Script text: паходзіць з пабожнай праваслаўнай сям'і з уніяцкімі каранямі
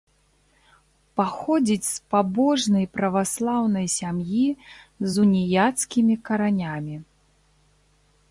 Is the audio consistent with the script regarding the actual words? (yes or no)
yes